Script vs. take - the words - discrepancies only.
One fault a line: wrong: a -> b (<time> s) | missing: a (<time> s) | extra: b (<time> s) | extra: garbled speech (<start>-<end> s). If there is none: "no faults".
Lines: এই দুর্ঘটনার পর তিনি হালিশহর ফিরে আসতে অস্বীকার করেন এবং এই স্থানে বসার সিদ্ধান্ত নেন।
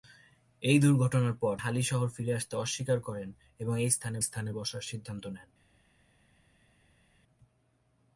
missing: তিনি (1.6 s)
extra: স্থানে (4.2 s)